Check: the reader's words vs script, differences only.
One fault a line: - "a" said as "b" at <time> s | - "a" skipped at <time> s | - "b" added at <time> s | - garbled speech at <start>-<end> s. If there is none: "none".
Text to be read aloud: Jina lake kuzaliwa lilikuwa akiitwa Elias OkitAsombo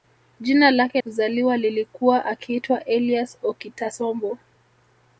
none